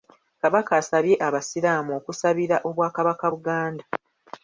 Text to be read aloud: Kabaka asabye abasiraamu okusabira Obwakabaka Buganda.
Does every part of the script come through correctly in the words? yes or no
yes